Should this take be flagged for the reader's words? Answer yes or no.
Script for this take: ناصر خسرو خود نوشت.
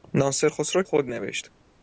no